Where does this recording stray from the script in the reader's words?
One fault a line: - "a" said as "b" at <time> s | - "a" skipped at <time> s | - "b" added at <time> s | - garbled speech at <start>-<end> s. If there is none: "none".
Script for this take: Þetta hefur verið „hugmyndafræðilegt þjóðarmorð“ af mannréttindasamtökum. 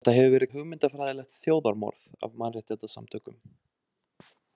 none